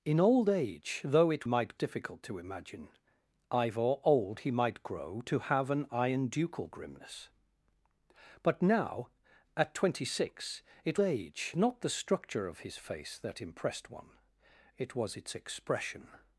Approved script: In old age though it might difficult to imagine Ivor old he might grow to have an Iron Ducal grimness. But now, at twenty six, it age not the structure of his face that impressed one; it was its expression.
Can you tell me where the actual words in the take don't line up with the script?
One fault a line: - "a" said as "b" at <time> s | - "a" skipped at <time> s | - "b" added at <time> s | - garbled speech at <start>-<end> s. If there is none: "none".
none